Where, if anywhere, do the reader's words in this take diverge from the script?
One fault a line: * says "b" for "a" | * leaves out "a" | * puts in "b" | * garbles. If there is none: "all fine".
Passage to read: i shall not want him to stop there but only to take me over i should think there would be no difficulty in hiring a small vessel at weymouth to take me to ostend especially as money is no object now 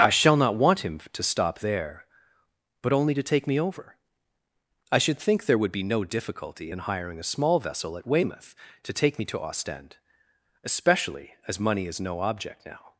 all fine